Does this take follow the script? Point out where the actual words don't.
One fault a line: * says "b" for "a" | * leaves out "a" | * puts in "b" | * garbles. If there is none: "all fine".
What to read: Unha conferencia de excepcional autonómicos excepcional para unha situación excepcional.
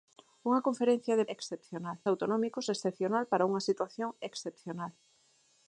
all fine